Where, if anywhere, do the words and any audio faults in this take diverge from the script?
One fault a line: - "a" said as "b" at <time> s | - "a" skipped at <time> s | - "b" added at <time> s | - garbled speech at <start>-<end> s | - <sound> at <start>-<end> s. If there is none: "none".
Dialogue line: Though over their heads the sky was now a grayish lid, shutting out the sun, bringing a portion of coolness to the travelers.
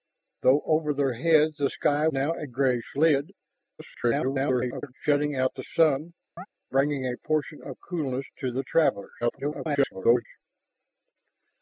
- "was" skipped at 2.1 s
- garbled speech at 3.8-4.9 s
- chirp at 6.4-6.5 s
- garbled speech at 9.2-10.3 s